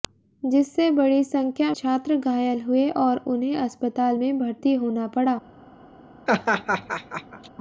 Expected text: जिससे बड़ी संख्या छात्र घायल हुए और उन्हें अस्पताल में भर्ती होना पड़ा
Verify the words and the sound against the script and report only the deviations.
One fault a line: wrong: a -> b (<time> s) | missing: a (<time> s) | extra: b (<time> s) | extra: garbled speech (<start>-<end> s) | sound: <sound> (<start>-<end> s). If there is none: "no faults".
sound: laugh (6.3-7.5 s)